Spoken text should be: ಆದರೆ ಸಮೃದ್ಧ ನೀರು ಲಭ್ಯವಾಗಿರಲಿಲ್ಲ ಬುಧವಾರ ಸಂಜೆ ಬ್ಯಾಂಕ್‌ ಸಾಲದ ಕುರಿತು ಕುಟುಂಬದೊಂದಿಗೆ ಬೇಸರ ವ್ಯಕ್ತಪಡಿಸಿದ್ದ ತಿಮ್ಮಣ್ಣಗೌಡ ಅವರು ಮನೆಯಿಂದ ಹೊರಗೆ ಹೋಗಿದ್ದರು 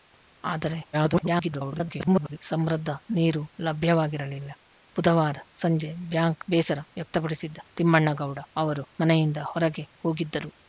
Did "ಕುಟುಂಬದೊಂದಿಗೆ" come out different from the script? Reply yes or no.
yes